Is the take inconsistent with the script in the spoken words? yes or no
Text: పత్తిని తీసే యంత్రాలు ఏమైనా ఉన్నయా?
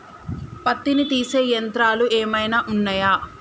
no